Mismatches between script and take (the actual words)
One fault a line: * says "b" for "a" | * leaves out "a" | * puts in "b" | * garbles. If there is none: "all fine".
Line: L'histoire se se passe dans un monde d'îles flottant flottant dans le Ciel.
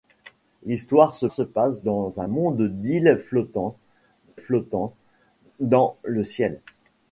all fine